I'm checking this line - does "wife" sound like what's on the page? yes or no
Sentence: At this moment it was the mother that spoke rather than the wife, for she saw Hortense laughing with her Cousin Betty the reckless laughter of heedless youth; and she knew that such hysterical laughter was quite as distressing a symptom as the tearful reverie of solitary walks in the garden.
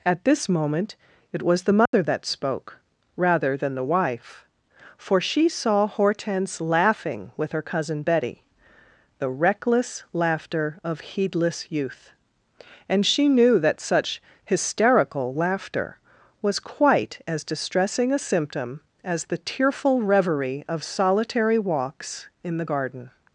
yes